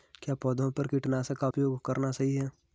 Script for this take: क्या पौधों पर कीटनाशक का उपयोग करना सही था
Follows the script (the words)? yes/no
no